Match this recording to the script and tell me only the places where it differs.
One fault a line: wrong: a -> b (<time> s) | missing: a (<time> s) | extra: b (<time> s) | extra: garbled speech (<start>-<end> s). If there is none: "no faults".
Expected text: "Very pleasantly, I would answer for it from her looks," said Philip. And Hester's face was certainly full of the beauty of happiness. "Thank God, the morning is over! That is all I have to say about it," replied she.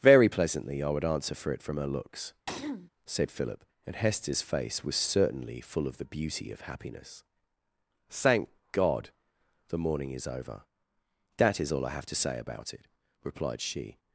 no faults